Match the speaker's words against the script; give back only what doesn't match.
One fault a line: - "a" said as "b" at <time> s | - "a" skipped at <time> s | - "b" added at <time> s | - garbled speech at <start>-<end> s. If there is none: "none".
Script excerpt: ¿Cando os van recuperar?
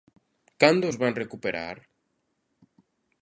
none